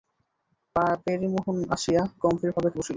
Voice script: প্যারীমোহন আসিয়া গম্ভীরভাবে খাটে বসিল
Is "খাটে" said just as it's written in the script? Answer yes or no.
no